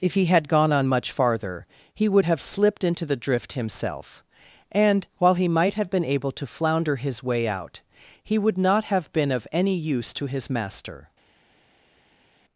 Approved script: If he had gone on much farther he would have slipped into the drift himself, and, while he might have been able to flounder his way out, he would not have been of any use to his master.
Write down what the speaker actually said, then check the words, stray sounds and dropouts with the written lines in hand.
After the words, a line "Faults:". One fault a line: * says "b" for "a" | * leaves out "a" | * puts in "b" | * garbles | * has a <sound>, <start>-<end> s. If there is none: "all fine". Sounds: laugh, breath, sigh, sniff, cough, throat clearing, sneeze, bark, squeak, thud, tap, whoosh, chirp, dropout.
If he had gone on much farther he would have slipped into the drift himself, and, while he might have been able to flounder his way out, he would not have been of any use to his master.
Faults:
all fine